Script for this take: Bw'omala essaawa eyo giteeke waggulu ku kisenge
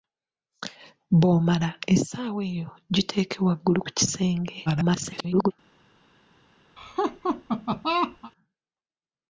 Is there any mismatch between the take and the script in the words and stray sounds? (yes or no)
yes